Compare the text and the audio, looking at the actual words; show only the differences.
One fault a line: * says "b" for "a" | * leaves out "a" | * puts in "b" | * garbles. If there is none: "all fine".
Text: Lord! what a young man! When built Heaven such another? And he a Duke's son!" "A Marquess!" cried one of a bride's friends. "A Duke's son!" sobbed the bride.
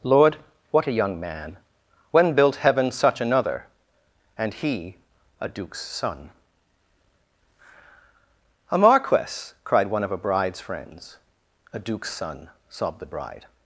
all fine